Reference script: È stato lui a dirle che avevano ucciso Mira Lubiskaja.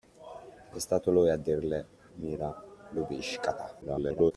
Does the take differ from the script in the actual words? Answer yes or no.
yes